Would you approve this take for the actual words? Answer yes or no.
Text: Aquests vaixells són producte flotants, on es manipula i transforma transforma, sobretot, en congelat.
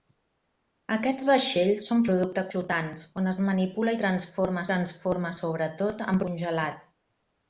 yes